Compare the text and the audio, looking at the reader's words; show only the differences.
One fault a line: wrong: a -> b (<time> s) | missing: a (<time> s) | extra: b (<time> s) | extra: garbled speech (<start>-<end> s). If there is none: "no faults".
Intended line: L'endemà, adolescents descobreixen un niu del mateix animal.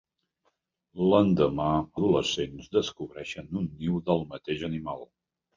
no faults